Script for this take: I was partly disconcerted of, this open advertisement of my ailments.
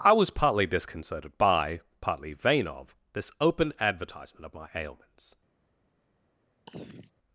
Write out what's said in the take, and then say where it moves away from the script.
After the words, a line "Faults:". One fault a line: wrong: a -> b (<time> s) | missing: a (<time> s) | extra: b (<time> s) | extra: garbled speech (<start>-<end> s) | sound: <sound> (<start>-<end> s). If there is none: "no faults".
I was partly disconcerted by, partly vain of, this open advertisement of my ailments.
Faults:
extra: by partly vain (1.4 s)
sound: throat clearing (6.7-7.1 s)